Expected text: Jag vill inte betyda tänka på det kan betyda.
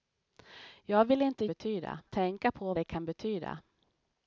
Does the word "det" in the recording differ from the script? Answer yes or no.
no